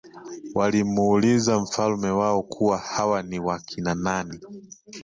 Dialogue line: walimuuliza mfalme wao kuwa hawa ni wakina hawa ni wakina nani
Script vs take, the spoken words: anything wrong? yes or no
yes